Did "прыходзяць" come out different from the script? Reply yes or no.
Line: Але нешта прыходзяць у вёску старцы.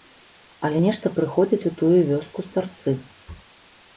no